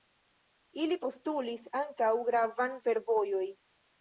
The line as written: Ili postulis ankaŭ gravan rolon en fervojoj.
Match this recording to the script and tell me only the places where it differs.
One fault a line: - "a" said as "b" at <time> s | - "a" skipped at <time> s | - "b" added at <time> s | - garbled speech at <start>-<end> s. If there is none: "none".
- "rolon en" skipped at 2.8 s